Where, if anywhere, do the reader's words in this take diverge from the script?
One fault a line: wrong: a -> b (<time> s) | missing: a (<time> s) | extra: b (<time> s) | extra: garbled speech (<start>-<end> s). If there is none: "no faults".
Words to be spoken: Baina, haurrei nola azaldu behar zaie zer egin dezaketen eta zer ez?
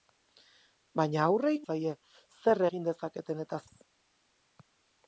missing: nola azaldu behar (1.5 s)
missing: zer (3.6 s)